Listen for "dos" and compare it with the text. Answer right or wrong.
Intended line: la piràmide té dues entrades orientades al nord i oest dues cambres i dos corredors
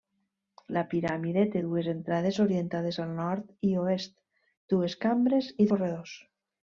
wrong